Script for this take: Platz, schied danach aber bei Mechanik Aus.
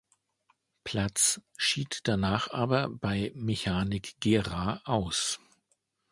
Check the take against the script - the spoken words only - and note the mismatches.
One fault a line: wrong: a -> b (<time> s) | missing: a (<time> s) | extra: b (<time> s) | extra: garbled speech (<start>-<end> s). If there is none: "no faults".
extra: Gera (4.2 s)